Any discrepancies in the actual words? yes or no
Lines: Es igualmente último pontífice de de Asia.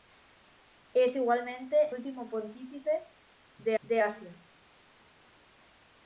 no